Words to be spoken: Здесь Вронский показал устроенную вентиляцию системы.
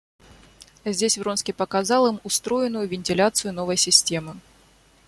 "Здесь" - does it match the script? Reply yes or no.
yes